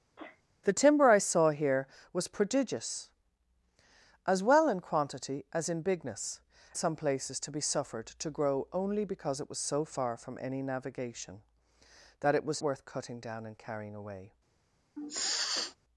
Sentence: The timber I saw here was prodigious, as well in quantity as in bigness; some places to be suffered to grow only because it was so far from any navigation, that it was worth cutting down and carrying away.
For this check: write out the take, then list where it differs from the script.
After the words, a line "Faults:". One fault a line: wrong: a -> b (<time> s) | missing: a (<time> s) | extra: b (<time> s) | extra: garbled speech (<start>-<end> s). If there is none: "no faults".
The timber I saw here was prodigious, as well in quantity as in bigness; some places to be suffered to grow only because it was so far from any navigation, that it was worth cutting down and carrying away.
Faults:
no faults